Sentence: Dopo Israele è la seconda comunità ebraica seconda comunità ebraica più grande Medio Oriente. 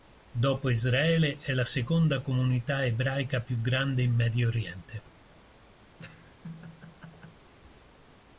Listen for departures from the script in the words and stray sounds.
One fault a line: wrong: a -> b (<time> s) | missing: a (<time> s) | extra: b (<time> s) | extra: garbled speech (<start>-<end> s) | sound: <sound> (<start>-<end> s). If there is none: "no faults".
missing: seconda comunità ebraica (3.4 s)
extra: in (4.0 s)
sound: laugh (5.9-7.5 s)